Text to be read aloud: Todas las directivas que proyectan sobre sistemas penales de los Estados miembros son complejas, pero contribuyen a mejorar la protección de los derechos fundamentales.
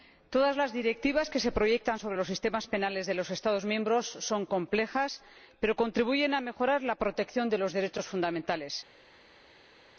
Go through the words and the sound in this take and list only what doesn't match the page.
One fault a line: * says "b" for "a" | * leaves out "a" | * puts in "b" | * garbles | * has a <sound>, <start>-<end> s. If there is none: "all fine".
* puts in "se"
* puts in "los"